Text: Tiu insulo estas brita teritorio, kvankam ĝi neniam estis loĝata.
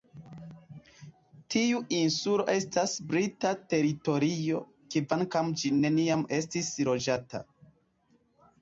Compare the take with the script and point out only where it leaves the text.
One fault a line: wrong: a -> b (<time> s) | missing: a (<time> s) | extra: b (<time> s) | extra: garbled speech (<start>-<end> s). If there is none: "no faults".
no faults